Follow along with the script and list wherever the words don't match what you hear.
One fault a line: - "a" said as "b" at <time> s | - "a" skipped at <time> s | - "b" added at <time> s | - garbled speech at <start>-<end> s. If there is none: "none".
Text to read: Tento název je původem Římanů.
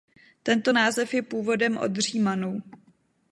- "od" added at 1.8 s